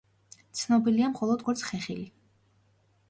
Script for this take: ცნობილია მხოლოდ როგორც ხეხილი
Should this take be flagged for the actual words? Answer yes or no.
no